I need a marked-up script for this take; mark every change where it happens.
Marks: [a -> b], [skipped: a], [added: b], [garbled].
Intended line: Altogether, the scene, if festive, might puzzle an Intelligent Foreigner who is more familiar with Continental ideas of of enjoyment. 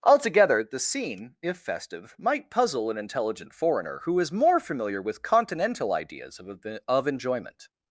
Altogether, the scene, if festive, might puzzle an Intelligent Foreigner who is more familiar with Continental ideas of of enjoyment.